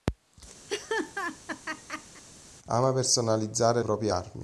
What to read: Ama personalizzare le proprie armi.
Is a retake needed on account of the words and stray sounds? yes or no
yes